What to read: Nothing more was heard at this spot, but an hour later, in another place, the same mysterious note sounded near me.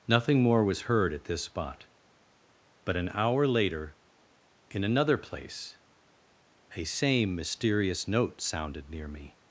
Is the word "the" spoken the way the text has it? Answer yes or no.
no